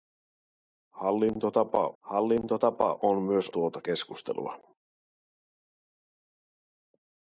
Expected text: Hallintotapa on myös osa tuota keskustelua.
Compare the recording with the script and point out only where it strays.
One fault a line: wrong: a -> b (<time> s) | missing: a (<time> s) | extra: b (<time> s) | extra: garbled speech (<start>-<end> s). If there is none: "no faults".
extra: hallintotapa (2.0 s)
missing: osa (3.5 s)